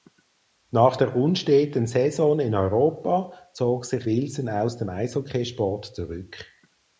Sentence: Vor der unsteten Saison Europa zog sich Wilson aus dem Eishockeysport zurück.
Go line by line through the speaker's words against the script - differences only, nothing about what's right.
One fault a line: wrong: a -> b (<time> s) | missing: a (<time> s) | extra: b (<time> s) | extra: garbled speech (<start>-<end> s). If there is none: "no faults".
wrong: Vor -> Nach (0.7 s)
extra: in (2.4 s)